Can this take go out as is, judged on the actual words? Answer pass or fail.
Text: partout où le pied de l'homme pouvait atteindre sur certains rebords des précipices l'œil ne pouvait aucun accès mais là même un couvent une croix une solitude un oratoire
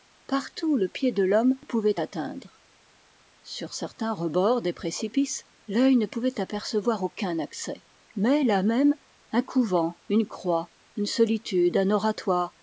fail